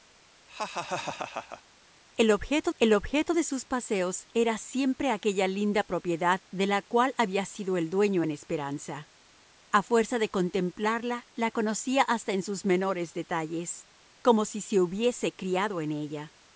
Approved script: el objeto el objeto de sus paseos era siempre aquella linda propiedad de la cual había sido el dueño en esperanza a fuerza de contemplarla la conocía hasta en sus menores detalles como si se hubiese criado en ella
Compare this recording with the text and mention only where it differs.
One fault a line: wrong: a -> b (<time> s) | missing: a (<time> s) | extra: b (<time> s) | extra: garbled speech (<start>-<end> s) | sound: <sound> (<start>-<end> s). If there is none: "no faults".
sound: laugh (0.5-1.6 s)